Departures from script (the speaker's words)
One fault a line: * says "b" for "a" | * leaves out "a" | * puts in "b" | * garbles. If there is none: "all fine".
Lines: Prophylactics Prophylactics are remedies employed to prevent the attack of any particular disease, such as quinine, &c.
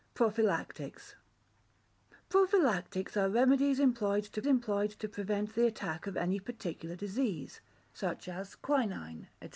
* puts in "employed to"